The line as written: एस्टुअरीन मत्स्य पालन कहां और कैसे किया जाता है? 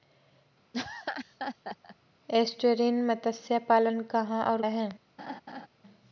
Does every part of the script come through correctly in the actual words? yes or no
no